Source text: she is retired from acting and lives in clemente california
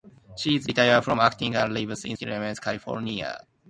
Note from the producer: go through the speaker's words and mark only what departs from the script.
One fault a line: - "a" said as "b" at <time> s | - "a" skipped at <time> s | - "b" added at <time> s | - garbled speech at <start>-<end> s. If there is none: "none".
none